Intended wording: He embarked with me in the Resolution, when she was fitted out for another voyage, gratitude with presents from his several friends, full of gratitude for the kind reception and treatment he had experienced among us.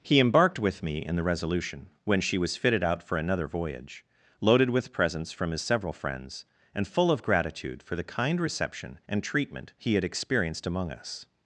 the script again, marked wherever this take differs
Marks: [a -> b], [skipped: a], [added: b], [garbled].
He embarked with me in the Resolution, when she was fitted out for another voyage, [gratitude -> loaded] with presents from his several friends, [added: and] full of gratitude for the kind reception and treatment he had experienced among us.